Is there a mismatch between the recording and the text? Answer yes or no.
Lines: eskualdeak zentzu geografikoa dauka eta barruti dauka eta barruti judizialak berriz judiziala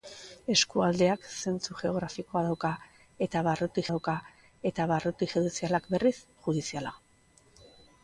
no